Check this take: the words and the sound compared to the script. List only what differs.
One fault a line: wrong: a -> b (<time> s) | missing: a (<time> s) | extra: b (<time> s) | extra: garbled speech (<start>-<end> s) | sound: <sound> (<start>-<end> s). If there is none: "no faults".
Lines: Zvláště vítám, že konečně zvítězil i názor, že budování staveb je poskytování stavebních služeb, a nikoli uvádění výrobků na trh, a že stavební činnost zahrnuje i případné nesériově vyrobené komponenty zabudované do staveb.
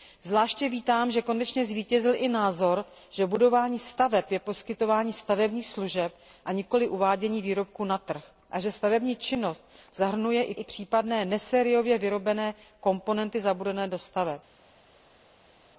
extra: i (10.5 s)